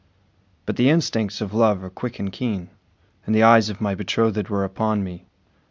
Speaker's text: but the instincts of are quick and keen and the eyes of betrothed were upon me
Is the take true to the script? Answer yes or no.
no